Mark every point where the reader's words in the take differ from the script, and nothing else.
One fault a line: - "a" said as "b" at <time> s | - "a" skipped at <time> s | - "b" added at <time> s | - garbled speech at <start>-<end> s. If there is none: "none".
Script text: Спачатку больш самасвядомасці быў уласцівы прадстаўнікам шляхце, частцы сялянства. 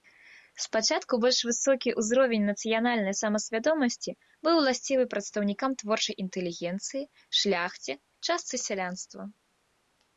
- "высокі ўзровень нацыянальнай" added at 1.5 s
- "творчай інтэлігенцыі" added at 5.8 s